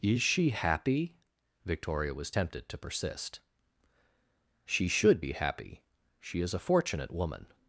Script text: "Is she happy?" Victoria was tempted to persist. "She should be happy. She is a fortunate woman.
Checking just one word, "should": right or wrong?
right